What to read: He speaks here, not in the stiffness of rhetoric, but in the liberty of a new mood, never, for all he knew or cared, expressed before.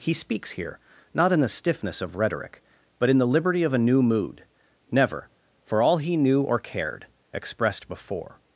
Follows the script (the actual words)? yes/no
yes